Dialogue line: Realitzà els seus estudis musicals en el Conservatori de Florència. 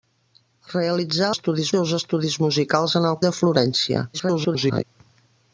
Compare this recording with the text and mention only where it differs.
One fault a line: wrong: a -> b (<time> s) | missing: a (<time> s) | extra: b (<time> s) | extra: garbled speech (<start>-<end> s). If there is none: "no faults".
wrong: els -> estudis (1.3 s)
missing: Conservatori (3.2 s)
extra: garbled speech (4.1-4.8 s)